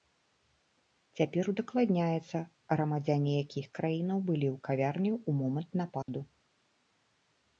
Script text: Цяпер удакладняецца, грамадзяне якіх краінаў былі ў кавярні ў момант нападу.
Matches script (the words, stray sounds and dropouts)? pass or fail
fail